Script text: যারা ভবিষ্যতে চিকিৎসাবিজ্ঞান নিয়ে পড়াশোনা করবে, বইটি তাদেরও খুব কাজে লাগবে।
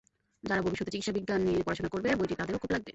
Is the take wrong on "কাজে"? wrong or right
wrong